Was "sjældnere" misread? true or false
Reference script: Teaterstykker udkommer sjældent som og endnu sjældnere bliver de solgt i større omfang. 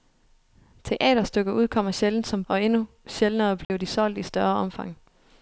false